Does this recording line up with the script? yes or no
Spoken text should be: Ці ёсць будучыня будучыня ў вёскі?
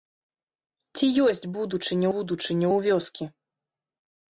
yes